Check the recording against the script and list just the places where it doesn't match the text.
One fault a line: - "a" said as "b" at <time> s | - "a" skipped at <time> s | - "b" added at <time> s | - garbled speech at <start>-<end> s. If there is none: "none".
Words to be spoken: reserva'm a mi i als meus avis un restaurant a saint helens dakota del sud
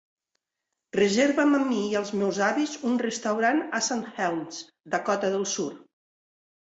none